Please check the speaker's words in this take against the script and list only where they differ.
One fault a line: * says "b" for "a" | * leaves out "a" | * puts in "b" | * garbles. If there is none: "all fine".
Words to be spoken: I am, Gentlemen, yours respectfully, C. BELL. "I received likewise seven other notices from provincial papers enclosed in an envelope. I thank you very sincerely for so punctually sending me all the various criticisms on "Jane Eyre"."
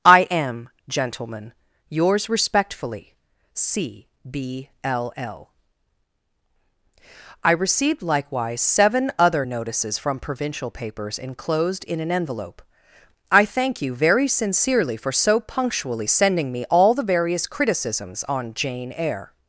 * says "B l l" for "BELL"